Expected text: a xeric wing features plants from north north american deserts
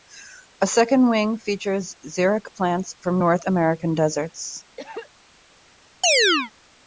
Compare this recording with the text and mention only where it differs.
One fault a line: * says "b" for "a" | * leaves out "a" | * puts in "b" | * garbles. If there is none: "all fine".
* says "second" for "xeric"
* puts in "xeric"
* leaves out "north"